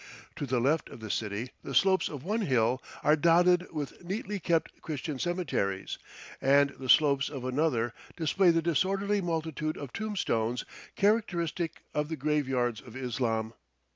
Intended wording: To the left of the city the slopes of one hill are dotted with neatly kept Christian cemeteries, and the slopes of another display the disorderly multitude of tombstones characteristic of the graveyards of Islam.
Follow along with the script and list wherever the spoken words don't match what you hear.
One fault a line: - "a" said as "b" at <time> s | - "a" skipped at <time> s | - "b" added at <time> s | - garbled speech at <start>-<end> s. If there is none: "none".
none